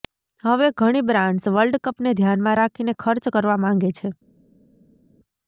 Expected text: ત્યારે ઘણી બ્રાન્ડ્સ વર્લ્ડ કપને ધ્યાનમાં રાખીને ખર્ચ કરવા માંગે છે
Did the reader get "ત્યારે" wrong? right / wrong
wrong